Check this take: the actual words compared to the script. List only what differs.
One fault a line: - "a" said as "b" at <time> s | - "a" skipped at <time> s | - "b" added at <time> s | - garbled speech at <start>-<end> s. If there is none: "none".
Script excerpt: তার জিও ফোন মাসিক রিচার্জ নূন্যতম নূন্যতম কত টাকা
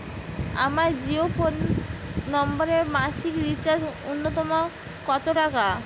- "তার" said as "আমার" at 0.7 s
- "নম্বরে" added at 2.3 s
- "নূন্যতম" skipped at 4.5 s